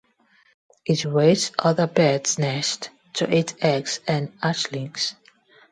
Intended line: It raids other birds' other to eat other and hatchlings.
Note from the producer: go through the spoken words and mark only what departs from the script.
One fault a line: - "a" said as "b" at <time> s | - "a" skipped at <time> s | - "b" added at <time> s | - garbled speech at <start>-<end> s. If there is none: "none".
- "other" said as "nests" at 2.4 s
- "other" said as "eggs" at 3.6 s